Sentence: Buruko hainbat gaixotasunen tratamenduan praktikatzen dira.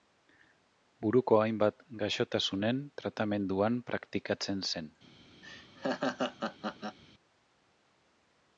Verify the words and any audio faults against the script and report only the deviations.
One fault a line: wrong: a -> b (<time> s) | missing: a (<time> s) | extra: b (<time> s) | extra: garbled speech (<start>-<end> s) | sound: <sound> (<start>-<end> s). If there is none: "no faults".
wrong: dira -> zen (4.7 s)
sound: laugh (5.4-7.0 s)